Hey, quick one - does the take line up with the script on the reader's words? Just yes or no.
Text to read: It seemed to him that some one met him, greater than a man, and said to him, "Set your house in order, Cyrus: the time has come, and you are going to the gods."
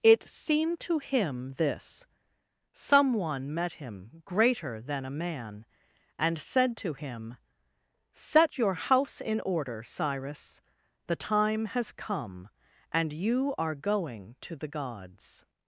no